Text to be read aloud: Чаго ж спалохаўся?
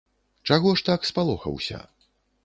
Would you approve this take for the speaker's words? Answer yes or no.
no